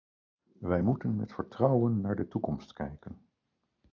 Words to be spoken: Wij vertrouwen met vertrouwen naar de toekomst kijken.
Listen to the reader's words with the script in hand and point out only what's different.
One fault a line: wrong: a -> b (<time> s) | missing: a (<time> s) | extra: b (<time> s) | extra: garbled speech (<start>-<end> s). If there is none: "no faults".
wrong: vertrouwen -> moeten (0.8 s)